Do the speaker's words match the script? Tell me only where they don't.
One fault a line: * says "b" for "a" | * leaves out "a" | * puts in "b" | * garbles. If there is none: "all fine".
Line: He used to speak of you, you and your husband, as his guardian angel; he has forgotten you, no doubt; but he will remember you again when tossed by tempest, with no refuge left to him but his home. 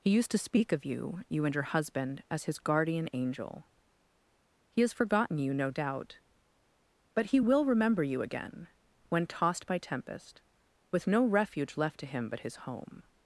all fine